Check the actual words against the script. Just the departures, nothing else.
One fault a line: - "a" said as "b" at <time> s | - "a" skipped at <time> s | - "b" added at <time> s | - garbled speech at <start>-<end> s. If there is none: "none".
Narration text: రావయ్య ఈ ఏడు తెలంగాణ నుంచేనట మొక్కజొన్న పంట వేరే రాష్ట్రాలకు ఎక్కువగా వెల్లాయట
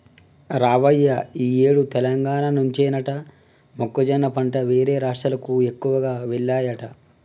none